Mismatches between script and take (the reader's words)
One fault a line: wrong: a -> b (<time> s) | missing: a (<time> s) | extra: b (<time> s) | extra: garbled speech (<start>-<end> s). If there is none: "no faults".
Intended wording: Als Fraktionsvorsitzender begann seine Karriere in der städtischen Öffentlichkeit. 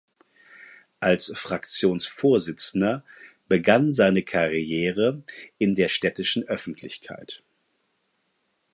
no faults